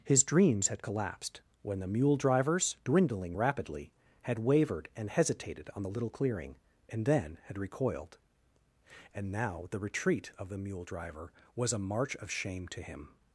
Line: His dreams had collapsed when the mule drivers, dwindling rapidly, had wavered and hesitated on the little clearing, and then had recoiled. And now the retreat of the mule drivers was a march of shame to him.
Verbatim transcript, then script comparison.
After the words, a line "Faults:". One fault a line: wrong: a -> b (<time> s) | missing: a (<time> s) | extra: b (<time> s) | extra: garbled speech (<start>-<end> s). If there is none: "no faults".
His dreams had collapsed when the mule drivers, dwindling rapidly, had wavered and hesitated on the little clearing, and then had recoiled. And now the retreat of the mule driver was a march of shame to him.
Faults:
wrong: drivers -> driver (10.8 s)